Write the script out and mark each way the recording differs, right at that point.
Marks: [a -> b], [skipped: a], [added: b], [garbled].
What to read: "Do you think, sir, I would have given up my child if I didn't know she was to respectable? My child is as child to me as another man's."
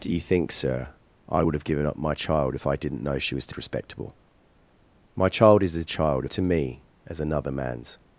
"Do you think, sir, I would have given up my child if I didn't know she was to respectable? My child is as child to me as another man's."